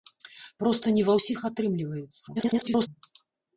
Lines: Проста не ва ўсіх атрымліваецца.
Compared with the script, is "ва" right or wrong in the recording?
right